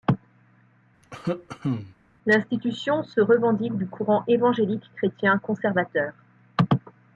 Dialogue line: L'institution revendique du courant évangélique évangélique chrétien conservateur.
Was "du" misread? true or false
false